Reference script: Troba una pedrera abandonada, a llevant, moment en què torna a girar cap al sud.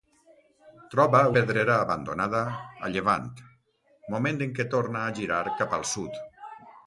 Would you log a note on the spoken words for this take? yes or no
yes